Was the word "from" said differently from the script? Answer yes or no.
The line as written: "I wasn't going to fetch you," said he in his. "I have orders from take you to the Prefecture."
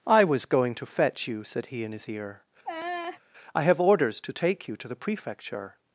yes